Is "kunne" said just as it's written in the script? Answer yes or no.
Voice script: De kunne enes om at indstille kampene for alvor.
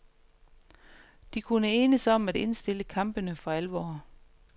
yes